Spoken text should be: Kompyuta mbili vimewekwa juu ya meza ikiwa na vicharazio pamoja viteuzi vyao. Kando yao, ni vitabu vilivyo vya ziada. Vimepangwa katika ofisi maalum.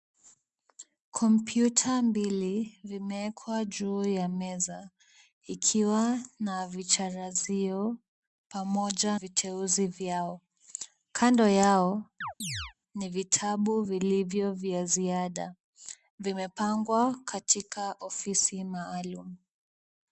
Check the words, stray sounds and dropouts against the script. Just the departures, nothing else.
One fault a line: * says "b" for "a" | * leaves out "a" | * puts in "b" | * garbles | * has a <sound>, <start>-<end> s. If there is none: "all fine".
* has a chirp, 12.2-12.7 s